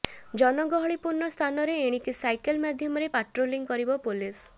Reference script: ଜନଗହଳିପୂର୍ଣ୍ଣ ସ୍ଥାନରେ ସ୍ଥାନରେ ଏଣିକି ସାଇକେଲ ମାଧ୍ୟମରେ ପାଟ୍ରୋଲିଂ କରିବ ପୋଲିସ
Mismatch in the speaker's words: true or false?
true